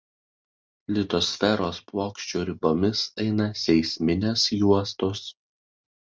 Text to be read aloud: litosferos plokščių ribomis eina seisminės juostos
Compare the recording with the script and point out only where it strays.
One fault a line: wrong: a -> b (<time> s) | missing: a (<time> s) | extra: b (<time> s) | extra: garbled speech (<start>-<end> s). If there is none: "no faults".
no faults